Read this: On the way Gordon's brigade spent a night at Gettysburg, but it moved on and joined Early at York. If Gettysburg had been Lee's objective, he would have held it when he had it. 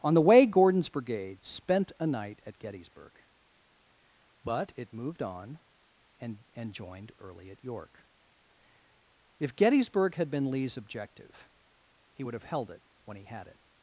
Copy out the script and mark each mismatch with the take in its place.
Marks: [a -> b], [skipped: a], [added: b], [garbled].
On the way Gordon's brigade spent a night at Gettysburg, but it moved on and [added: and] joined Early at York. If Gettysburg had been Lee's objective, he would have held it when he had it.